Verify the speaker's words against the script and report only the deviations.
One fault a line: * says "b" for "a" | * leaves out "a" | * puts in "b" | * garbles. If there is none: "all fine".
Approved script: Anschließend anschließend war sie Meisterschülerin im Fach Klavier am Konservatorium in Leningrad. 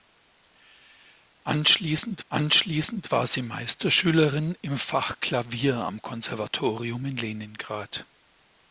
all fine